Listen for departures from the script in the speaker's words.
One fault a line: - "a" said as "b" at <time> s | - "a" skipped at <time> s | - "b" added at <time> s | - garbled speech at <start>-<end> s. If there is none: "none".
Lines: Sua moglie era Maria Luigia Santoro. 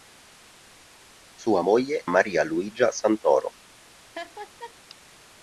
- "era" skipped at 2.1 s